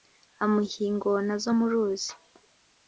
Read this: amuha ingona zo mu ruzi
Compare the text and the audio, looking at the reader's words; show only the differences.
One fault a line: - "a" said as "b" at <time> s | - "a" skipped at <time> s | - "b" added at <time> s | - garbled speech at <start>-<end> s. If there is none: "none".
none